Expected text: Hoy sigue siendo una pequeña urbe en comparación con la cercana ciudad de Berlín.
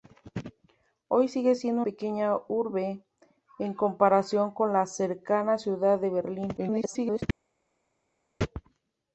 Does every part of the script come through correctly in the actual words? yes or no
no